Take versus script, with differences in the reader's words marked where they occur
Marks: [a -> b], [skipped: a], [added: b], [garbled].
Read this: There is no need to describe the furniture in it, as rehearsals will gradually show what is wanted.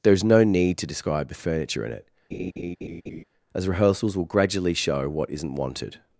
There is no need to describe the furniture in it, as rehearsals will gradually show what [is -> isn't] wanted.